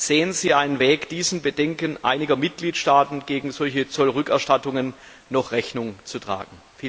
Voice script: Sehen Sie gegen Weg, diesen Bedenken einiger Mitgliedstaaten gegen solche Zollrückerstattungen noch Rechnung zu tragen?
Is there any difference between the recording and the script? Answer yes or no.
yes